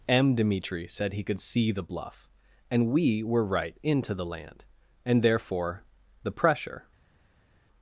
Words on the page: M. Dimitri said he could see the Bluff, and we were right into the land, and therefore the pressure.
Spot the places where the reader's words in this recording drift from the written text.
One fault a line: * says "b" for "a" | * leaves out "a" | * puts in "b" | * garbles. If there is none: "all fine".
all fine